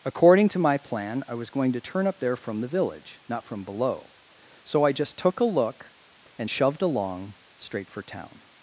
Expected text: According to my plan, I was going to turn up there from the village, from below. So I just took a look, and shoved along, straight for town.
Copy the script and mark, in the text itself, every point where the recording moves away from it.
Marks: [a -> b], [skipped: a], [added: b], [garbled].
According to my plan, I was going to turn up there from the village, [added: not] from below. So I just took a look, and shoved along, straight for town.